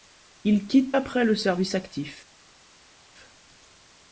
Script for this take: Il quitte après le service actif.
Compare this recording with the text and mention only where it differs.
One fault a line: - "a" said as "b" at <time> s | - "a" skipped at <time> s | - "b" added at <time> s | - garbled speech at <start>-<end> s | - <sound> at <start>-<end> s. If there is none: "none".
none